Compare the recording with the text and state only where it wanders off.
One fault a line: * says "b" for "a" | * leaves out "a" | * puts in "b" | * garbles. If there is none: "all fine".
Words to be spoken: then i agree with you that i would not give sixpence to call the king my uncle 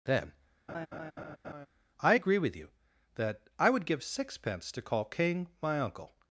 * leaves out "not"
* leaves out "the"